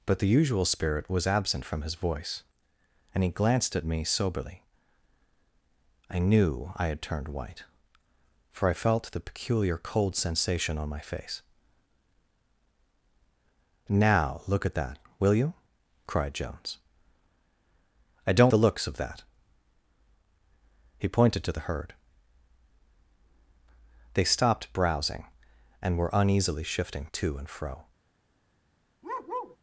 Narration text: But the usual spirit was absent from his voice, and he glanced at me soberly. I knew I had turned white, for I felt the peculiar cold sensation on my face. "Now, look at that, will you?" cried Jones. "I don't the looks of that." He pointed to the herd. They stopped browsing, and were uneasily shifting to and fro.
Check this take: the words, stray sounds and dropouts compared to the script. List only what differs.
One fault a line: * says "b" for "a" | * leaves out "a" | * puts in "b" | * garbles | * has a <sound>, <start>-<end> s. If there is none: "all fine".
* has a bark, 29.0-29.6 s